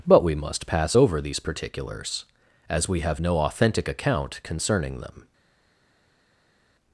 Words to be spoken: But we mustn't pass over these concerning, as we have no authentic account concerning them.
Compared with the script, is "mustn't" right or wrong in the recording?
wrong